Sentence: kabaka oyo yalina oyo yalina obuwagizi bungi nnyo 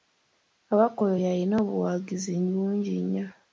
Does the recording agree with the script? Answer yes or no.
no